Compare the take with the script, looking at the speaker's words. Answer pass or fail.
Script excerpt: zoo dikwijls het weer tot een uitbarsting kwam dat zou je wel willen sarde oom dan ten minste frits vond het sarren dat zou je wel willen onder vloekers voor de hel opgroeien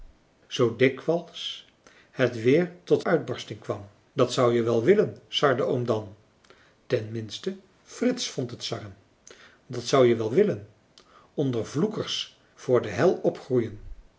fail